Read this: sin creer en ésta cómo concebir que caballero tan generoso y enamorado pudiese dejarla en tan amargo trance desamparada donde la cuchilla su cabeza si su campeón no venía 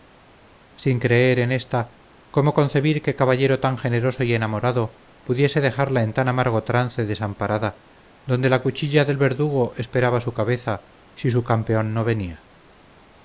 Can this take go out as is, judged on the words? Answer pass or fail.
fail